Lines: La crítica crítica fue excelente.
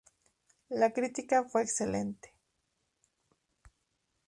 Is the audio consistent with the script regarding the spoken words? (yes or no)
no